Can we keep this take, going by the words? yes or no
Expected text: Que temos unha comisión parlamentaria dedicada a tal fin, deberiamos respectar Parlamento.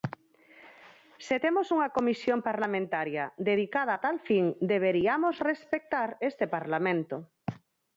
no